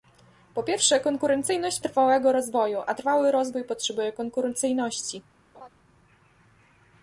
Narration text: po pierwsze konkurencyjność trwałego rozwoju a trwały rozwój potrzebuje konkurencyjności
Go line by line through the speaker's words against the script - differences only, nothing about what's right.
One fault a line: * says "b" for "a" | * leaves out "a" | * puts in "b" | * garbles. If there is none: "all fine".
all fine